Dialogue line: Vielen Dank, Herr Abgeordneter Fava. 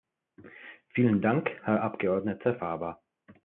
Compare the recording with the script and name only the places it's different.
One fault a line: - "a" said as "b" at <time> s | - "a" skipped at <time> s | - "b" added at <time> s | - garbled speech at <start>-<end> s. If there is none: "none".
none